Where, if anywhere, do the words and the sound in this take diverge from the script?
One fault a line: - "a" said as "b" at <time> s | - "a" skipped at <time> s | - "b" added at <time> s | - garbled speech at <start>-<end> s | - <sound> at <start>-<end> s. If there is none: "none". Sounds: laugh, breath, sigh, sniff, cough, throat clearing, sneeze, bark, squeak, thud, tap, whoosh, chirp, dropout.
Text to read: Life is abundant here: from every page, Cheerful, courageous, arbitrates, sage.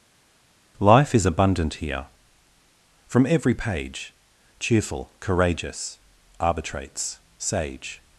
none